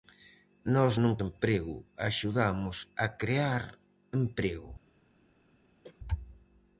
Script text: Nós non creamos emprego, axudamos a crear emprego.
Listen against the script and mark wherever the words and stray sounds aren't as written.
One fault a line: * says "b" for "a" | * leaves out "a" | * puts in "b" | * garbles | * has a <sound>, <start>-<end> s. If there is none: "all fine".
* leaves out "creamos"
* has a cough, 5.8-6.0 s